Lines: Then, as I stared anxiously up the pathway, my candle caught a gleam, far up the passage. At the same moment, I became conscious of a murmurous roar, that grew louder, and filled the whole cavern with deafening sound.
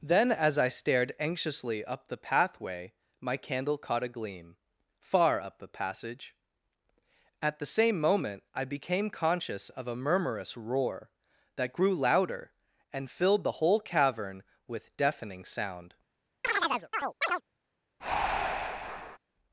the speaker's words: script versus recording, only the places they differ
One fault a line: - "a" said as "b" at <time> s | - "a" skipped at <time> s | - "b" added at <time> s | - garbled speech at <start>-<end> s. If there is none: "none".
none